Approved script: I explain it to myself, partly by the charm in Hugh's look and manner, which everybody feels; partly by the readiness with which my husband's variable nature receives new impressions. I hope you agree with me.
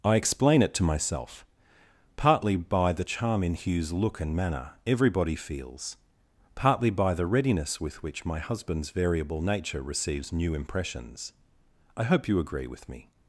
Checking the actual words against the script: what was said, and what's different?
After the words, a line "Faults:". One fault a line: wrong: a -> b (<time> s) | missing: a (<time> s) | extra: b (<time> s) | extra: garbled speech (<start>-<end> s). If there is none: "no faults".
I explain it to myself, partly by the charm in Hugh's look and manner, everybody feels; partly by the readiness with which my husband's variable nature receives new impressions. I hope you agree with me.
Faults:
missing: which (4.7 s)